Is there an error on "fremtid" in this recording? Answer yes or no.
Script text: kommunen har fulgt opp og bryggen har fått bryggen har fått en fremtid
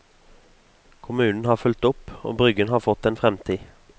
no